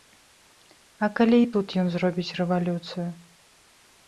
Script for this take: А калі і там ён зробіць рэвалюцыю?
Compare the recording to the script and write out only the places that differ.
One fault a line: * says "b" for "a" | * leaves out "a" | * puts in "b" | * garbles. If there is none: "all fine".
* says "тут" for "там"